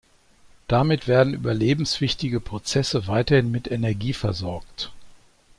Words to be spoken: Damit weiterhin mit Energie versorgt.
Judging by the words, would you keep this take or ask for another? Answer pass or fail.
fail